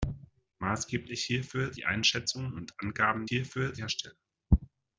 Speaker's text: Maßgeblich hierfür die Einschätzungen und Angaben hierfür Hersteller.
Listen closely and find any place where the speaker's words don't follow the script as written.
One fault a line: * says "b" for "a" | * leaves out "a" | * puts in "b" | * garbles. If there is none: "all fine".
all fine